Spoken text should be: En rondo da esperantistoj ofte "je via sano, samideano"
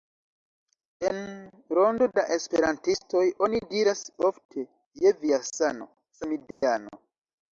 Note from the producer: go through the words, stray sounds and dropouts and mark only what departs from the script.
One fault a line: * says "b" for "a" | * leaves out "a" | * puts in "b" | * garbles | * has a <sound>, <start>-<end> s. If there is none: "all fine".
* puts in "oni diras"
* has a dropout, 6.5-6.6 s